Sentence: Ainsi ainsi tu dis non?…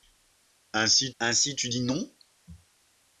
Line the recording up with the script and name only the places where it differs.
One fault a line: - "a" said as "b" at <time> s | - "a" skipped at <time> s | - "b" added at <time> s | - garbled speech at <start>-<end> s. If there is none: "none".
none